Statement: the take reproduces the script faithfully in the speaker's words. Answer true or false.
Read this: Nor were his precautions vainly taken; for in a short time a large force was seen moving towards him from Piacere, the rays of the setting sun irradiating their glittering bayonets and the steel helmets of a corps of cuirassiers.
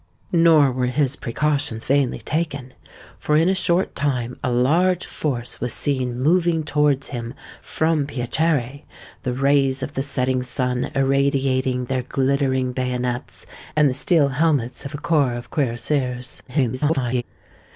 false